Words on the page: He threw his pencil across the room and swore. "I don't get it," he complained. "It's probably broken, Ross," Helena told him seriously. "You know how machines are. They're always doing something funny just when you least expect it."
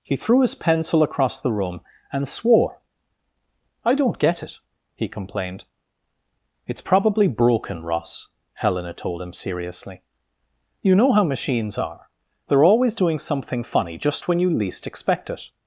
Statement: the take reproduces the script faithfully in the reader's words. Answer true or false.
true